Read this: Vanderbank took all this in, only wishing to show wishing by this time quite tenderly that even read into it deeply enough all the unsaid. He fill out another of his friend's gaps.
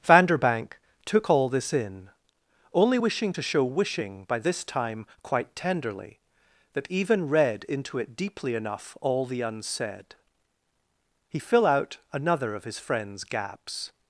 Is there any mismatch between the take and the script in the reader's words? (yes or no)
no